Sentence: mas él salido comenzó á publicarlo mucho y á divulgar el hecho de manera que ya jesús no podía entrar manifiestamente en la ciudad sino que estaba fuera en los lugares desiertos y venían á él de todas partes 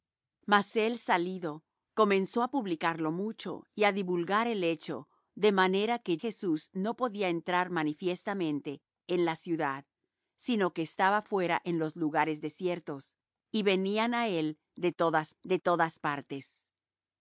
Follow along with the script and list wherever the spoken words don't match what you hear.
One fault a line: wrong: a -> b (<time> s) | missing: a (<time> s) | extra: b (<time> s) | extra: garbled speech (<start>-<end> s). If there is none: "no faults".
missing: ya (6.2 s)
extra: de todas (15.4 s)